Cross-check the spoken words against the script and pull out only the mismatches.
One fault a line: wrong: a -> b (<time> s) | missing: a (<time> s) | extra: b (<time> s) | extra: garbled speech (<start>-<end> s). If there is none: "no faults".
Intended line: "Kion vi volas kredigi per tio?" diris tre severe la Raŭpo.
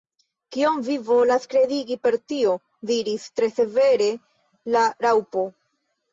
no faults